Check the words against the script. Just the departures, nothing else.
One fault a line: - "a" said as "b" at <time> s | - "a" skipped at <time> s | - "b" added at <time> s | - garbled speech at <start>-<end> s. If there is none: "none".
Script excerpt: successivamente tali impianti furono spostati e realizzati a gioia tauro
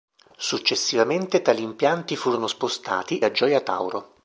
- "e realizzati" skipped at 3.2 s